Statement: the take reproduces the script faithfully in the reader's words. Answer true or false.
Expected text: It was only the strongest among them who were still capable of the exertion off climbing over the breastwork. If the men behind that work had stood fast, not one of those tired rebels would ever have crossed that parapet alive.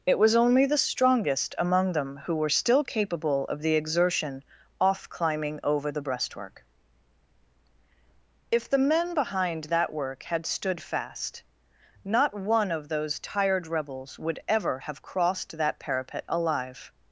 true